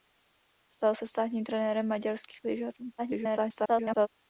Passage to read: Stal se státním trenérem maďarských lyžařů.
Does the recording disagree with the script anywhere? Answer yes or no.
yes